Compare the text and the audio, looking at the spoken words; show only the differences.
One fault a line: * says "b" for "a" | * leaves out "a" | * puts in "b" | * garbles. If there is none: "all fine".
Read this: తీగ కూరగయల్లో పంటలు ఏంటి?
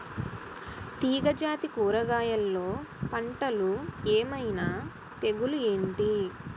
* puts in "జాతి"
* puts in "ఏమైన తెగులు"